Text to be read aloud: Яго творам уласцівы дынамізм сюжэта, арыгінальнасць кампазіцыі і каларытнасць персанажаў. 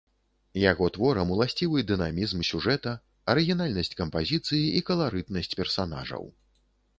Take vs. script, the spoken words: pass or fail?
pass